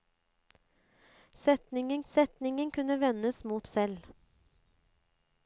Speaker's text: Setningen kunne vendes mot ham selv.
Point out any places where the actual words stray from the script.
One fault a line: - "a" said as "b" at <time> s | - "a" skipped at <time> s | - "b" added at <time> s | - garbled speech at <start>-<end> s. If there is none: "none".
- "setningen" added at 2.1 s
- "ham" skipped at 3.7 s